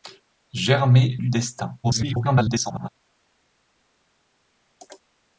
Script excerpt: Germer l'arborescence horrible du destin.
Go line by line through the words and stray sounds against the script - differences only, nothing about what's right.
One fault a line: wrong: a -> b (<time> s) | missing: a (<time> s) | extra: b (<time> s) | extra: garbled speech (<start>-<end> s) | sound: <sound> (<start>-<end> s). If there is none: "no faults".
missing: l'arborescence horrible (1.2 s)
extra: garbled speech (1.8-2.9 s)